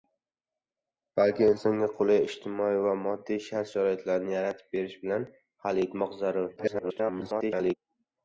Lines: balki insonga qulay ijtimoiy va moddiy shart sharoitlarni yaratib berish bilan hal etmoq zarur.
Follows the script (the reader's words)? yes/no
no